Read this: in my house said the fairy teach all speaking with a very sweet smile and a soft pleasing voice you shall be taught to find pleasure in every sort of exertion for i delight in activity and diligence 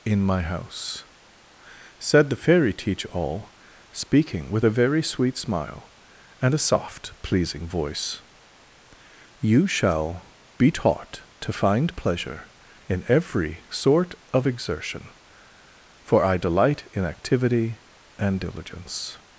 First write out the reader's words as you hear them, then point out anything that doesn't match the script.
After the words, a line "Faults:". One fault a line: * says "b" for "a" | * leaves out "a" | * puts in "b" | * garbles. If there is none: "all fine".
in my house said the fairy teach all speaking with a very sweet smile and a soft pleasing voice you shall be taught to find pleasure in every sort of exertion for i delight in activity and diligence
Faults:
all fine